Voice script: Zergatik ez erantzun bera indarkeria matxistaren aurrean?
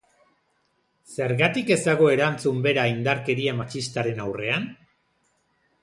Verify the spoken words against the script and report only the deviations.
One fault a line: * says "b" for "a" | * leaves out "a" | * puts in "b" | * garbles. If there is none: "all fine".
* puts in "dago"